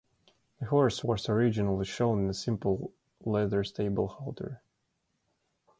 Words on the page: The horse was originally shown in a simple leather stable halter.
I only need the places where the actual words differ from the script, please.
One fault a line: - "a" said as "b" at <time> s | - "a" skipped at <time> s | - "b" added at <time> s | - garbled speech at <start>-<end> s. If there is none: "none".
none